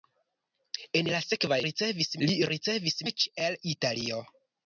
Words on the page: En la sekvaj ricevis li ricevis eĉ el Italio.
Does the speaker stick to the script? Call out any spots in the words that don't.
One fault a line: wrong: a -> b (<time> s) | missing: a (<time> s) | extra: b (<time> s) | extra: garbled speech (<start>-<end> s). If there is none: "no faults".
no faults